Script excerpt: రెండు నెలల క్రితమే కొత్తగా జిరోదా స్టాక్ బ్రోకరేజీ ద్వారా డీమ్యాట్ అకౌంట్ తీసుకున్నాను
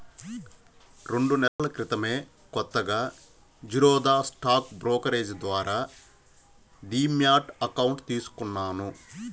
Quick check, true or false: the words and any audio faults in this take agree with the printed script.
false